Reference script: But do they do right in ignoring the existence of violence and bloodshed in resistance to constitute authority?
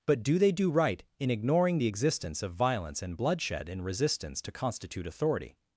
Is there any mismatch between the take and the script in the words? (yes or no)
no